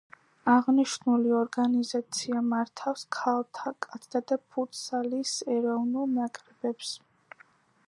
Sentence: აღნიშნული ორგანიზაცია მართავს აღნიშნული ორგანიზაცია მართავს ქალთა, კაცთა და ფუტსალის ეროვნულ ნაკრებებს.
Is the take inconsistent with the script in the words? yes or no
yes